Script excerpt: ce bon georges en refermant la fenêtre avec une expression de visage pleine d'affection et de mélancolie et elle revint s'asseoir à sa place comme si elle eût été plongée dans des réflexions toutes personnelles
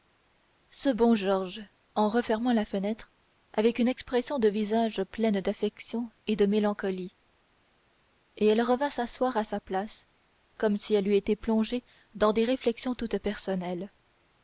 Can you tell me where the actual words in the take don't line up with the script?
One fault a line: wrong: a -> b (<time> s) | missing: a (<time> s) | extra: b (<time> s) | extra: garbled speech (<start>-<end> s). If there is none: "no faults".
no faults